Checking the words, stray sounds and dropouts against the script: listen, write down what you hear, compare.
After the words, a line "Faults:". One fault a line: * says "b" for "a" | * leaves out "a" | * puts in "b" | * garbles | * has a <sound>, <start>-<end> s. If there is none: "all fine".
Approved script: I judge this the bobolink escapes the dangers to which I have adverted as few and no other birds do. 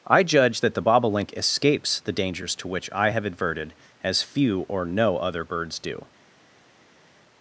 I judge that the bobolink escapes the dangers to which I have adverted as few or no other birds do.
Faults:
* says "that" for "this"
* says "or" for "and"